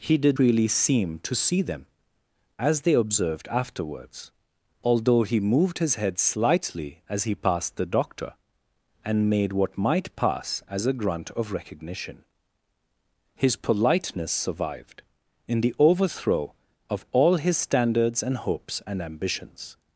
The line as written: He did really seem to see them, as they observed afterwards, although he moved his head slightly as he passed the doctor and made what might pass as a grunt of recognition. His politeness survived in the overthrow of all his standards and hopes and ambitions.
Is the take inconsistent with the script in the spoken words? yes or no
no